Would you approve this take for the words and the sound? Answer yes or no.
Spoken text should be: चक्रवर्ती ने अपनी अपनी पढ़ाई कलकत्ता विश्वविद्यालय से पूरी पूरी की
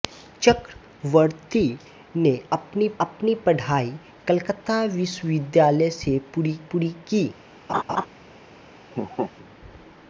no